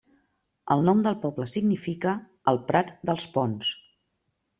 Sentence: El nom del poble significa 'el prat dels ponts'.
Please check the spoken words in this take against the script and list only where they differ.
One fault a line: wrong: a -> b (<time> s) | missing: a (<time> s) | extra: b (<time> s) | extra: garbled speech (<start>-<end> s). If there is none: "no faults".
no faults